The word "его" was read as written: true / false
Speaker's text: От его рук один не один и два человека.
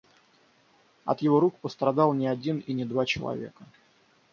true